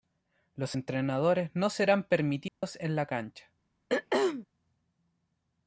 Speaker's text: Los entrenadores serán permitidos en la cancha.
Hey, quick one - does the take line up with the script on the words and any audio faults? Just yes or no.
no